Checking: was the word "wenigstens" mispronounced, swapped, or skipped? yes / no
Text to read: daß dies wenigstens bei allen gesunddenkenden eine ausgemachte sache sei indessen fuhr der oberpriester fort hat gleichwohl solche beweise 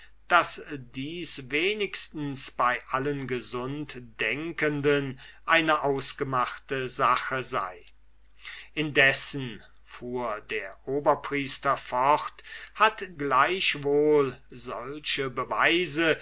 no